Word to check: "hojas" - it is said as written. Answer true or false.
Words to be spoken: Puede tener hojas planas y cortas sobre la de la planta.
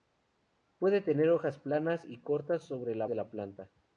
true